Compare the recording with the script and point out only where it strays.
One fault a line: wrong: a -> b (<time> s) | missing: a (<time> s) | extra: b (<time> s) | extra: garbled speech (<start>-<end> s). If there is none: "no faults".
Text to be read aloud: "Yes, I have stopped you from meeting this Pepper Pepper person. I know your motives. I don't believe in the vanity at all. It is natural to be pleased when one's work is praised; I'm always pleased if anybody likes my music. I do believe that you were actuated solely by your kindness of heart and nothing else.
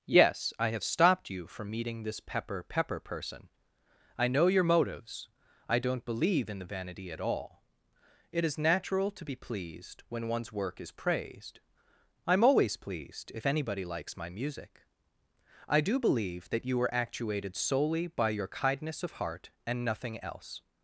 no faults